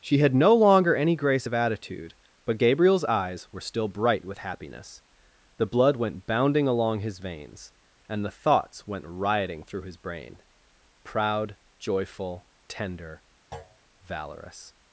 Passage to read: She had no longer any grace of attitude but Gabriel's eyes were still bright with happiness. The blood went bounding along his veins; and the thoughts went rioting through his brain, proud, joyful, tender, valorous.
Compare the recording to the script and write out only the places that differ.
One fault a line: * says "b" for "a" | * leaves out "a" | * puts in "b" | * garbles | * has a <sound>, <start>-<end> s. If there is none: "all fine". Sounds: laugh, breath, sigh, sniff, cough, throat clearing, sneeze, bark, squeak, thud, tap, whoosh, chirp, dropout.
* has a thud, 13.5-13.8 s